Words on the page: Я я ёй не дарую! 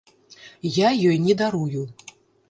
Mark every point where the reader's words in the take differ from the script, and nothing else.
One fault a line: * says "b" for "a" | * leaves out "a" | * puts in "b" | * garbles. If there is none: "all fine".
* leaves out "я"